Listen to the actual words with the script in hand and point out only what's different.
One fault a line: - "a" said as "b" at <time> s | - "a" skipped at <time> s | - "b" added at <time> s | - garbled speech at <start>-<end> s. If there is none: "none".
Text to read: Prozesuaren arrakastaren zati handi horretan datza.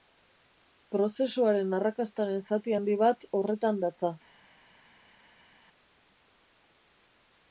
- "bat" added at 3.0 s